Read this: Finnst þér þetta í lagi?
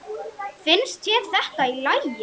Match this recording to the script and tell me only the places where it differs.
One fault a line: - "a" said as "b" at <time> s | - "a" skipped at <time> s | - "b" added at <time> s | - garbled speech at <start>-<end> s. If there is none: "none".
none